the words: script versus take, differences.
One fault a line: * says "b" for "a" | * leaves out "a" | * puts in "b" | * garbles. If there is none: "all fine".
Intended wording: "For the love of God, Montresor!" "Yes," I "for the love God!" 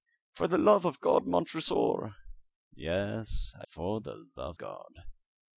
all fine